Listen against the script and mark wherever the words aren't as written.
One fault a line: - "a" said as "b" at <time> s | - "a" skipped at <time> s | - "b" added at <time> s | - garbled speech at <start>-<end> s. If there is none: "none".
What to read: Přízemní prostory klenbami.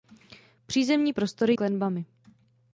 none